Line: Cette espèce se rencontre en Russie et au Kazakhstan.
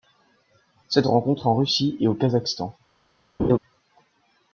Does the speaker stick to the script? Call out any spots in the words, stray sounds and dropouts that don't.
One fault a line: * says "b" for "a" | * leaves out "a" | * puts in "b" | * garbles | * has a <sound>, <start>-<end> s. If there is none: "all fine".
* leaves out "espèce"
* has a laugh, 3.4-3.6 s